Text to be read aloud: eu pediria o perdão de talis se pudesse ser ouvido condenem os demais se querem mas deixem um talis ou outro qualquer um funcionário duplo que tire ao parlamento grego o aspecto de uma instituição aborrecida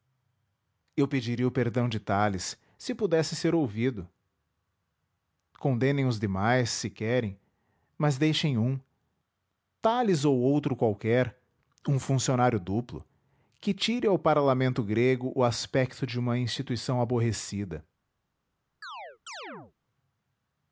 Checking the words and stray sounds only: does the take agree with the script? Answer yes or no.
no